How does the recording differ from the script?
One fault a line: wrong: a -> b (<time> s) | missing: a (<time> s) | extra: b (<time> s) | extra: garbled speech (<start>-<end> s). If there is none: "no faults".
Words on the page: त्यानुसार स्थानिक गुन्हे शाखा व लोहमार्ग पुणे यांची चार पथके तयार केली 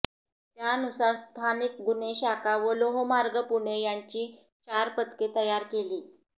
no faults